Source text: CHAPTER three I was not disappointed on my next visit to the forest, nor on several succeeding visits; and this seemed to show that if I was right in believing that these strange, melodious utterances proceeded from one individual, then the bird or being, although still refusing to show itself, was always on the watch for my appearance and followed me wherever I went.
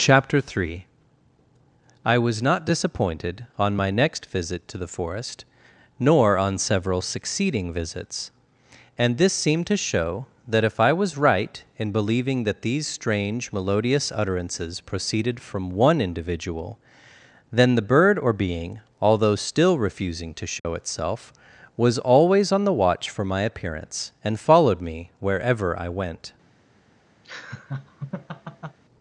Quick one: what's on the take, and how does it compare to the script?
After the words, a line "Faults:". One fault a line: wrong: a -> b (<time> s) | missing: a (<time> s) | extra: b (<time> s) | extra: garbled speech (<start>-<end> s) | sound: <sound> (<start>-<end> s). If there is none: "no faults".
CHAPTER three I was not disappointed on my next visit to the forest, nor on several succeeding visits; and this seemed to show that if I was right in believing that these strange, melodious utterances proceeded from one individual, then the bird or being, although still refusing to show itself, was always on the watch for my appearance and followed me wherever I went.
Faults:
sound: dropout (20.6-20.6 s)
sound: laugh (27.2-28.8 s)